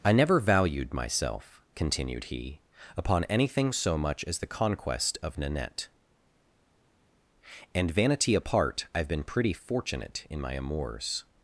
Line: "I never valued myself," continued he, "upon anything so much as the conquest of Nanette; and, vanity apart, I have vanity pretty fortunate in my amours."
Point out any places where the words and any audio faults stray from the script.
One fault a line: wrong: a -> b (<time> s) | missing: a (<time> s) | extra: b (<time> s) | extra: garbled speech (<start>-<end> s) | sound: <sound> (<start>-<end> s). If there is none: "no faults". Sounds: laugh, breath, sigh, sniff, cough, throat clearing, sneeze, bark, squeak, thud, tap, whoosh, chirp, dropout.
wrong: vanity -> been (9.1 s)